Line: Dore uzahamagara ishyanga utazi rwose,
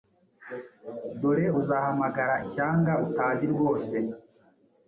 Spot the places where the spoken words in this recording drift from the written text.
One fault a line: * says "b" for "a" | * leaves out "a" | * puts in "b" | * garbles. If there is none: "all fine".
all fine